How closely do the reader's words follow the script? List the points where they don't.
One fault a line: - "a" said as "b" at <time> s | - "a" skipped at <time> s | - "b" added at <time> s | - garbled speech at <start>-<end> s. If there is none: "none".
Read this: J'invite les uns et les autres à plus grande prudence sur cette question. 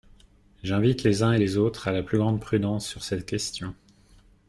- "la" added at 1.9 s